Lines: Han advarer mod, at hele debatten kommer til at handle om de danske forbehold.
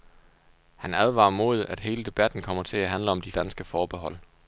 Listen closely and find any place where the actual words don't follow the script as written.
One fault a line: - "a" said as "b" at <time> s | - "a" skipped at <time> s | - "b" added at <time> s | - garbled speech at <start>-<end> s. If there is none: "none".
none